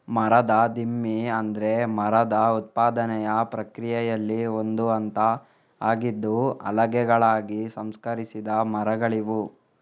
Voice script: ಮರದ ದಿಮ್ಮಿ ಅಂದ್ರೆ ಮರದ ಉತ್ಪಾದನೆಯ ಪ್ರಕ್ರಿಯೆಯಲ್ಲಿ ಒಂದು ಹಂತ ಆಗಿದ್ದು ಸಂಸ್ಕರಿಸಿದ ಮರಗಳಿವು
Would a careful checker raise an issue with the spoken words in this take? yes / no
yes